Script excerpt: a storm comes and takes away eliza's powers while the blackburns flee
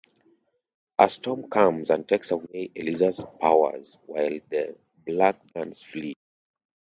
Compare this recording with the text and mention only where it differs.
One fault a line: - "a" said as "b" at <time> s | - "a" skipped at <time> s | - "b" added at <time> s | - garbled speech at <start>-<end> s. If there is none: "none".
none